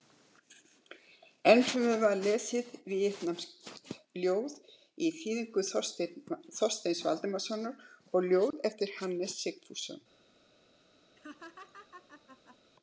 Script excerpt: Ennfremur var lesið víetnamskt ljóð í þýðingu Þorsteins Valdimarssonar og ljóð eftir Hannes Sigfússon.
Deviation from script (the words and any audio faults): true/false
true